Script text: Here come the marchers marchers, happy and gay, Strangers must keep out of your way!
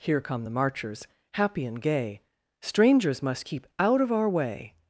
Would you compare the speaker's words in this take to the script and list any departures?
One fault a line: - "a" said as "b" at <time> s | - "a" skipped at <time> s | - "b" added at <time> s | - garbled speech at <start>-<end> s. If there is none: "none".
- "marchers" skipped at 1.1 s
- "your" said as "our" at 4.1 s